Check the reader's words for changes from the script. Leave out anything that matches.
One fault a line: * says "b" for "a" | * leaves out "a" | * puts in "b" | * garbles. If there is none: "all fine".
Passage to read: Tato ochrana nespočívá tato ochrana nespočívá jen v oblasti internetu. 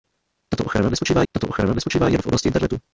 all fine